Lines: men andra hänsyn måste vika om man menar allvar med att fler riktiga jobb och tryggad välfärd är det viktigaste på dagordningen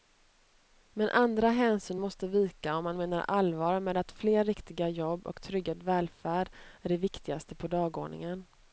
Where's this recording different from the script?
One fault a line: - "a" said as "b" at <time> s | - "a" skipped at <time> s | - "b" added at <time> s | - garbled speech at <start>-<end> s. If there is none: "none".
none